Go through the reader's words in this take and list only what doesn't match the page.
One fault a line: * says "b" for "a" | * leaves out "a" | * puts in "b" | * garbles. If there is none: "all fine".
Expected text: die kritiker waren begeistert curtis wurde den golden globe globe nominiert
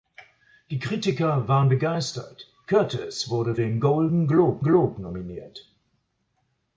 all fine